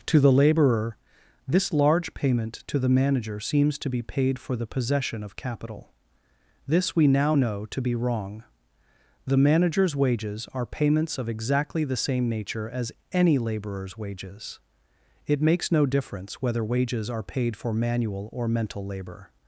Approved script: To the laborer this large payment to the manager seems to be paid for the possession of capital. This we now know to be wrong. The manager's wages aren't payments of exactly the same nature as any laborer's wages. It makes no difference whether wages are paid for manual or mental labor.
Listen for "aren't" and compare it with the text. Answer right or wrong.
wrong